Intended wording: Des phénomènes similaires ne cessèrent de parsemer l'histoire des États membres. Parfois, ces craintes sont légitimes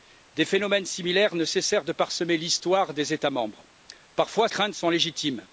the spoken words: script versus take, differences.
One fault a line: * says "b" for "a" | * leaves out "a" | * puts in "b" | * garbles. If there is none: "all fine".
* leaves out "ces"